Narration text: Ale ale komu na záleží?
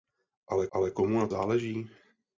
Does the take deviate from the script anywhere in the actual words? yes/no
no